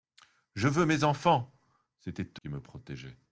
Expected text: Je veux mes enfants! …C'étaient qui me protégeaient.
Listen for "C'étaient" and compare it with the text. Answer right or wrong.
right